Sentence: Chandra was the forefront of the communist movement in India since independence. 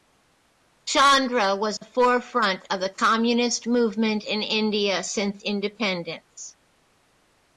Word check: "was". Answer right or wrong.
right